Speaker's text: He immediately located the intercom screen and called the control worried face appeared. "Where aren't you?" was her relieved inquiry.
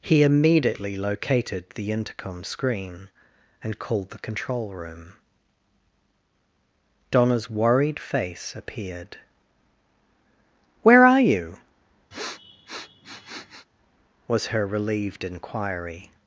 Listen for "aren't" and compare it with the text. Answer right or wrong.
wrong